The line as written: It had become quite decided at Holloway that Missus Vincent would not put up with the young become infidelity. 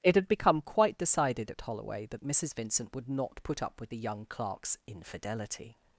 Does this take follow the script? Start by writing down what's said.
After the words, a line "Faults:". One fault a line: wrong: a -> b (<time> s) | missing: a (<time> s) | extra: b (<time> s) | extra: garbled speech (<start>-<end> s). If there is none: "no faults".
It had become quite decided at Holloway that Missus Vincent would not put up with the young clerk's infidelity.
Faults:
wrong: become -> clerk's (4.2 s)